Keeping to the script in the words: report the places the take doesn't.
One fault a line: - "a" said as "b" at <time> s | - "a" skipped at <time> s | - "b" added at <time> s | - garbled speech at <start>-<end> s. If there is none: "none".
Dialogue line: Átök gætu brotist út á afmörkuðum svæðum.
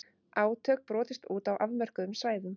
- "gætu" skipped at 0.8 s